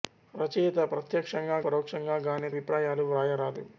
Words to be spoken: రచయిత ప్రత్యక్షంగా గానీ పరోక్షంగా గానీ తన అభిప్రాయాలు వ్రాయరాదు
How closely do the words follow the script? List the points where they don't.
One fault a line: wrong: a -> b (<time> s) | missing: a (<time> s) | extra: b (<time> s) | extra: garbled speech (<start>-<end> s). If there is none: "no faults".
missing: గానీ (1.6 s)
missing: తన (2.5 s)